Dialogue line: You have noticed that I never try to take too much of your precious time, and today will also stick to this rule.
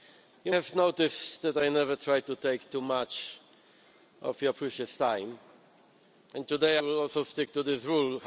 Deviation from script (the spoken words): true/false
false